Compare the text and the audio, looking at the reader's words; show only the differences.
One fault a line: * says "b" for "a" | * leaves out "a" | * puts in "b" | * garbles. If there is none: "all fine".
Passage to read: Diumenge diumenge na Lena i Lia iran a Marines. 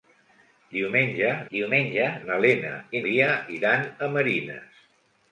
all fine